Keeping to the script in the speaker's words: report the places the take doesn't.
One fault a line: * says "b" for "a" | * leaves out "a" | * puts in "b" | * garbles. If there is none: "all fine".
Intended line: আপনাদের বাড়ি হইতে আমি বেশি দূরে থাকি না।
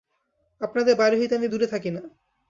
* leaves out "বেশি"